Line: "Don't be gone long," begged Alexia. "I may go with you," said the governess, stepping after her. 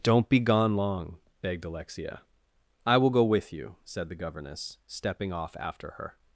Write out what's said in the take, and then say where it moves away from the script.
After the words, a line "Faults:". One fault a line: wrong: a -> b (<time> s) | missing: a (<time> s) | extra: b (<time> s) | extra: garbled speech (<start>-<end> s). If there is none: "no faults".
"Don't be gone long," begged Alexia. "I will go with you," said the governess, stepping off after her.
Faults:
wrong: may -> will (3.0 s)
extra: off (5.3 s)